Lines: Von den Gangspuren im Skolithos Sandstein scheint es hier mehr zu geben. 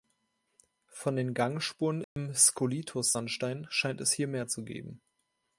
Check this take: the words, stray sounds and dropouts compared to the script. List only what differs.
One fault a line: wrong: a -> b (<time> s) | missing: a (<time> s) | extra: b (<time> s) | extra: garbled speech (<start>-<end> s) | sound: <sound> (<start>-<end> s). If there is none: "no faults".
sound: dropout (2.0-2.2 s)